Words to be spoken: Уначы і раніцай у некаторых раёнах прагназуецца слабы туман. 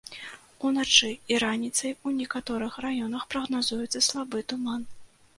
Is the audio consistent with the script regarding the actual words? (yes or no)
yes